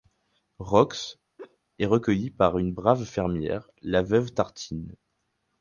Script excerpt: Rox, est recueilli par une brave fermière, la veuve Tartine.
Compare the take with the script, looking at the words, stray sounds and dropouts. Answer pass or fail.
fail